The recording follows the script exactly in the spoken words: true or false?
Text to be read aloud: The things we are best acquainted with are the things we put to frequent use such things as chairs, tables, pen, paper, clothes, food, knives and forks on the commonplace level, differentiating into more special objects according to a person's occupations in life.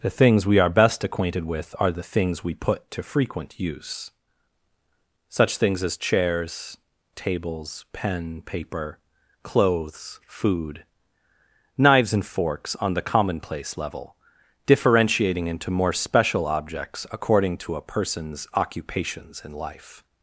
true